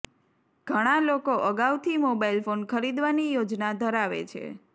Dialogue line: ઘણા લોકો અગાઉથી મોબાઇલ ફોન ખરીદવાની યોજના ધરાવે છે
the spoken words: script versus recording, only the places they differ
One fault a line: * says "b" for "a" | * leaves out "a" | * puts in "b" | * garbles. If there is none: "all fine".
all fine